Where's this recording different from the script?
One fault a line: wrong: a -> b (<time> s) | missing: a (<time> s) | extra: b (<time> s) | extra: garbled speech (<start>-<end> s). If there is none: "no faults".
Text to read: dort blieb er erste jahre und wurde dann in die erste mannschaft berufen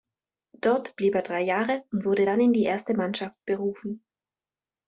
wrong: erste -> drei (1.2 s)